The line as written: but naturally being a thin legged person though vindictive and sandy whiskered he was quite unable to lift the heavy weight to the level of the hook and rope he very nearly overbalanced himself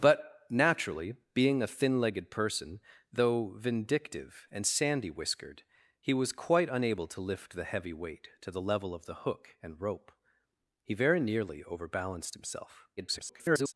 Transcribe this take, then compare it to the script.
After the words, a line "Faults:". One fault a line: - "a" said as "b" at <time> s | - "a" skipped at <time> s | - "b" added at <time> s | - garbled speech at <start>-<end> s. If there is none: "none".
but naturally being a thin legged person though vindictive and sandy whiskered he was quite unable to lift the heavy weight to the level of the hook and rope he very nearly overbalanced himself [garbled]
Faults:
- garbled speech at 13.0-13.7 s